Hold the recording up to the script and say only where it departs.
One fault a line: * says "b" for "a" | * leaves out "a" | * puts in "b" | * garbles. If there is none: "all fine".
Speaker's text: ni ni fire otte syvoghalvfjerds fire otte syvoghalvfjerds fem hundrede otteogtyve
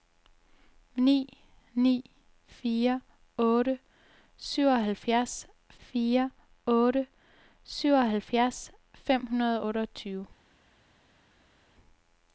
all fine